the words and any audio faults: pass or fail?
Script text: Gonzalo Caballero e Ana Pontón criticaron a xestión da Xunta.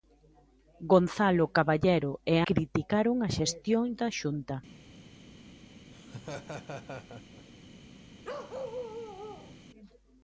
fail